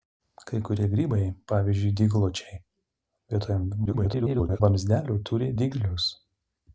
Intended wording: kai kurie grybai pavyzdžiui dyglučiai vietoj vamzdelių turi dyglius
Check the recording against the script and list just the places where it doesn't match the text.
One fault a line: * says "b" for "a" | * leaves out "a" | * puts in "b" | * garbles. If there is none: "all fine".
* garbles